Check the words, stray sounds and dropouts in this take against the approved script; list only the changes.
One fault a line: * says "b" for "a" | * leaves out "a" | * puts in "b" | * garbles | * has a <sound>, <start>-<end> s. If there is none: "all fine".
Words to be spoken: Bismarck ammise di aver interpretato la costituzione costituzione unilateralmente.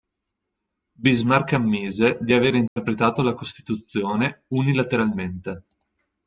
* has a dropout, 2.7-2.8 s
* leaves out "costituzione"